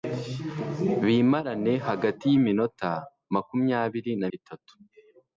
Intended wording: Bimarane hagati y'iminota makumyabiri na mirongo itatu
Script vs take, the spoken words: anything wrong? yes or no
yes